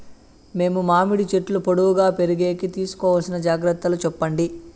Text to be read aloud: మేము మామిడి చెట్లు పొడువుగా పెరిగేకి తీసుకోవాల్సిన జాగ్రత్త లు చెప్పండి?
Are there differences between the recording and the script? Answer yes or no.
no